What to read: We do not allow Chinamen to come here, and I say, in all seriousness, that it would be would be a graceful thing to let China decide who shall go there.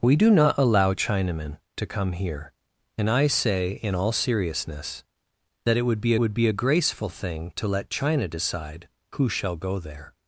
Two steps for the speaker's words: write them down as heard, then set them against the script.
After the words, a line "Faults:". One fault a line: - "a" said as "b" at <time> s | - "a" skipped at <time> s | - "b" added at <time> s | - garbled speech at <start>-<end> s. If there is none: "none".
We do not allow Chinamen to come here, and I say, in all seriousness, that it would be would be a graceful thing to let China decide who shall go there.
Faults:
none